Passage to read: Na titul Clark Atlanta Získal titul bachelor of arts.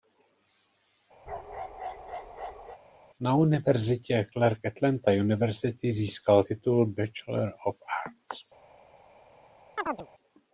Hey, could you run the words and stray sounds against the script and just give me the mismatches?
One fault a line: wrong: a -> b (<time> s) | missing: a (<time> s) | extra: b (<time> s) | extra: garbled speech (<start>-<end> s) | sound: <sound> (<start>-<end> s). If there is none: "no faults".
sound: bark (1.3-2.8 s)
wrong: titul -> univerzitě (3.4 s)
extra: University (5.1 s)
sound: chirp (9.8-10.1 s)